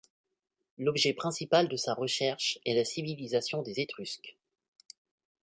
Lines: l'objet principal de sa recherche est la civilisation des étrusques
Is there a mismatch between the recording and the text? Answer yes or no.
no